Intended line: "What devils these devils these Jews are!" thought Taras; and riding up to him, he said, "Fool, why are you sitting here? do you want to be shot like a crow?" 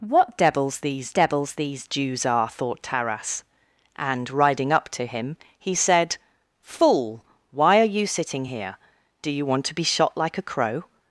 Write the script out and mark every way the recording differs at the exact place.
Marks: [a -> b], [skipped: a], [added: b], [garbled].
"What devils these devils these Jews are!" thought Taras; and riding up to him, he said, "Fool, why are you sitting here? do you want to be shot like a crow?"